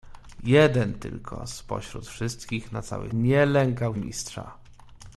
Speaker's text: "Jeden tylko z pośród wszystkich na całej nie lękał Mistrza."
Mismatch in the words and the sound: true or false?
false